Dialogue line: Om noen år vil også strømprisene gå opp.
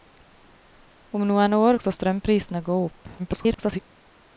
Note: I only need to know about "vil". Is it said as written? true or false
false